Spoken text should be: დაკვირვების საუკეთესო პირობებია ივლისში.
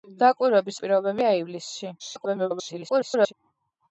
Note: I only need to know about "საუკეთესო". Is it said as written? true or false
false